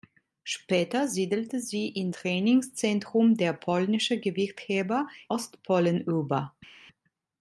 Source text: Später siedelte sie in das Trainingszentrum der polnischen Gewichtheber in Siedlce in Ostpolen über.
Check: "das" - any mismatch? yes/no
yes